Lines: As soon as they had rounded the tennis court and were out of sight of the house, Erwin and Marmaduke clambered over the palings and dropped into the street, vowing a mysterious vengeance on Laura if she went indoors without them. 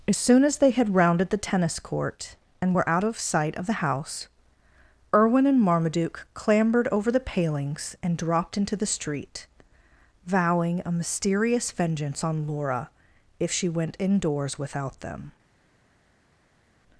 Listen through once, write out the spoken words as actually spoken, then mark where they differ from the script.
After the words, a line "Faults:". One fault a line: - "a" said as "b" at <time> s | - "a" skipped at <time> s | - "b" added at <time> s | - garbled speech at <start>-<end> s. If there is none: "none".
As soon as they had rounded the tennis court and were out of sight of the house, Erwin and Marmaduke clambered over the palings and dropped into the street, vowing a mysterious vengeance on Laura if she went indoors without them.
Faults:
none